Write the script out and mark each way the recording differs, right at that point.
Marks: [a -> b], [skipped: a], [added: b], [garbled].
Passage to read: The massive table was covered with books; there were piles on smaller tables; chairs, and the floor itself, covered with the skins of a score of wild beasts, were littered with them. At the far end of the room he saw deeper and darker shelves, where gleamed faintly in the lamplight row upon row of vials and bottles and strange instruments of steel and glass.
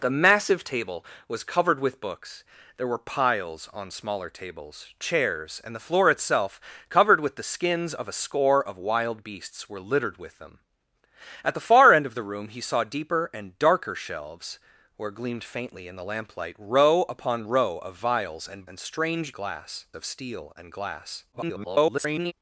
The massive table was covered with books; there were piles on smaller tables; chairs, and the floor itself, covered with the skins of a score of wild beasts, were littered with them. At the far end of the room he saw deeper and darker shelves, where gleamed faintly in the lamplight row upon row of vials and [skipped: bottles] and strange [instruments -> glass] of steel and glass. [garbled]